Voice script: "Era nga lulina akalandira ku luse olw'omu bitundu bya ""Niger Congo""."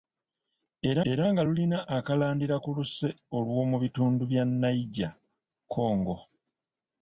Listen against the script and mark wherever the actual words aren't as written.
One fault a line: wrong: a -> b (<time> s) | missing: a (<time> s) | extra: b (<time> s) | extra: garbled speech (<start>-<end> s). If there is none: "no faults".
extra: era (1.1 s)